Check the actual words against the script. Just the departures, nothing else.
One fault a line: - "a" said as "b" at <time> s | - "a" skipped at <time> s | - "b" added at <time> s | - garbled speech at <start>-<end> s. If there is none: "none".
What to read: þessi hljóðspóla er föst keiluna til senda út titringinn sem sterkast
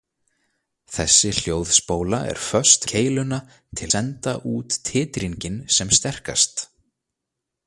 none